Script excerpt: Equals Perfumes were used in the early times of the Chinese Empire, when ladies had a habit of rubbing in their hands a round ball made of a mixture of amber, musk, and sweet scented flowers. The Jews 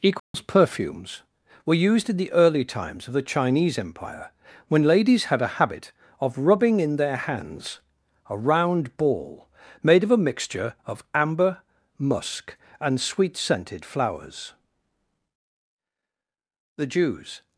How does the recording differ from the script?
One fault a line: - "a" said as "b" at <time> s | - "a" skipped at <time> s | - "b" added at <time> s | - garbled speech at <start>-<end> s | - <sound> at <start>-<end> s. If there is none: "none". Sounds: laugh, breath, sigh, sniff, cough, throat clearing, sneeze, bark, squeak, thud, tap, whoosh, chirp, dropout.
- dropout at 0.2-0.3 s